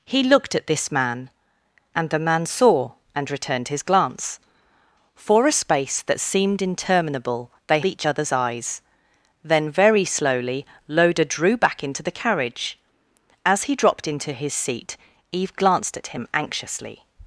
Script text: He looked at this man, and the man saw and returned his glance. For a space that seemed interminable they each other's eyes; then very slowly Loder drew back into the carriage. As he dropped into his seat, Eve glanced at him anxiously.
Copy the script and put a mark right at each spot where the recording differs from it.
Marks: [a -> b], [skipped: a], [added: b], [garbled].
He looked at this man, and the man saw and returned his glance. For a space that seemed interminable they each other's eyes; then very slowly Loder drew back into the carriage. As he dropped into his seat, Eve glanced at him anxiously.